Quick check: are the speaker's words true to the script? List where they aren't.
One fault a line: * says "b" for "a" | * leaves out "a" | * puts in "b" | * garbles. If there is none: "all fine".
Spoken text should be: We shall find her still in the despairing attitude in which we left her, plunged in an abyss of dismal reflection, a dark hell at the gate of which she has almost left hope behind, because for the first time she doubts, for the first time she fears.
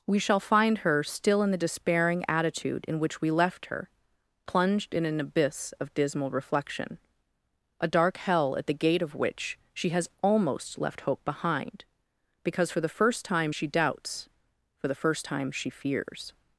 all fine